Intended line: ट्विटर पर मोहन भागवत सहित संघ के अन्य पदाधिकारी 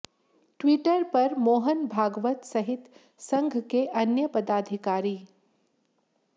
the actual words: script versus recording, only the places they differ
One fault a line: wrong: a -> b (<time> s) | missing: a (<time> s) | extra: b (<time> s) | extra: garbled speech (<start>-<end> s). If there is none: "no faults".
no faults